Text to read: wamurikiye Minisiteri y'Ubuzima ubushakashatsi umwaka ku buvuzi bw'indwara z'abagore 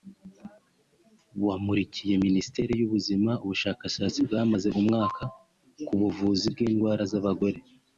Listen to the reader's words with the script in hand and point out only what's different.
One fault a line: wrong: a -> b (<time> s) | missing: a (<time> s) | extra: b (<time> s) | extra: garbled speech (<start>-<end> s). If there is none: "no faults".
extra: bwamaze (4.3 s)